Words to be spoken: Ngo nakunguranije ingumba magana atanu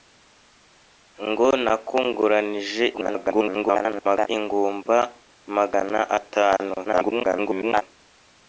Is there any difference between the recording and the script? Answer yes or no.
yes